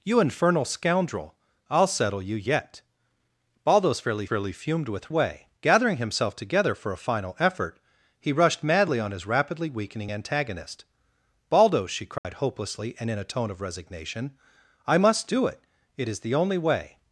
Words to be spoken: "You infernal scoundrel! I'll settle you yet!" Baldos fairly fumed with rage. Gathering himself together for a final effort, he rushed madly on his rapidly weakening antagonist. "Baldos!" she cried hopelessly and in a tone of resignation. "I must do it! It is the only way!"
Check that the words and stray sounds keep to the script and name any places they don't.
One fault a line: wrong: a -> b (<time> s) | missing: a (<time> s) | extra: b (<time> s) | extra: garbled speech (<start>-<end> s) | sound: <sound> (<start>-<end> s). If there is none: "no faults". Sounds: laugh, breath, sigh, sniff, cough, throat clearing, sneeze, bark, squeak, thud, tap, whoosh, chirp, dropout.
extra: fairly (4.2 s)
wrong: rage -> way (5.1 s)
sound: dropout (12.2-12.2 s)